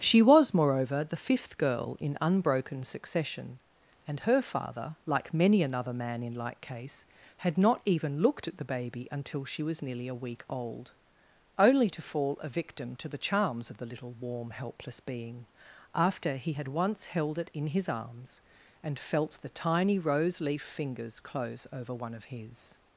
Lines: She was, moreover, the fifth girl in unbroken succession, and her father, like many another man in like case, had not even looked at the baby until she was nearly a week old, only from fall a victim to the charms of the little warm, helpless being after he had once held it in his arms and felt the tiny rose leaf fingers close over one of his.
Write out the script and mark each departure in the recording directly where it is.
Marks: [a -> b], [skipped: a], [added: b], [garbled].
She was, moreover, the fifth girl in unbroken succession, and her father, like many another man in like case, had not even looked at the baby until she was nearly a week old, only [from -> to] fall a victim to the charms of the little warm, helpless being after he had once held it in his arms and felt the tiny rose leaf fingers close over one of his.